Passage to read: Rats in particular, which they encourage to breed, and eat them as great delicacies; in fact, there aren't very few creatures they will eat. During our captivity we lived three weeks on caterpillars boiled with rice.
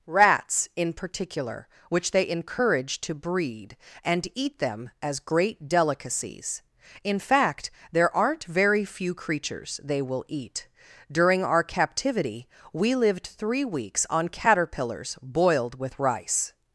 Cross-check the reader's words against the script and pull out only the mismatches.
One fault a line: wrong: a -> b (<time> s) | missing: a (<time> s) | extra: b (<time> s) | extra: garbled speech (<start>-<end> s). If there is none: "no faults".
no faults